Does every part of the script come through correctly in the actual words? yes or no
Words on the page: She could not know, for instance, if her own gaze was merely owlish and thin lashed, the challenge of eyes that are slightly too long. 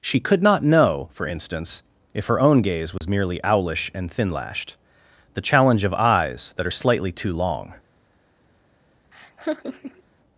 yes